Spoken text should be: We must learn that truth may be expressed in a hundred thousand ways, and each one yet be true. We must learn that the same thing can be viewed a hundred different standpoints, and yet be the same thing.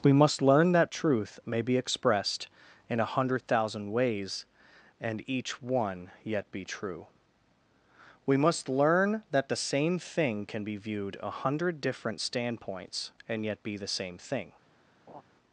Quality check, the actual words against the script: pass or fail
pass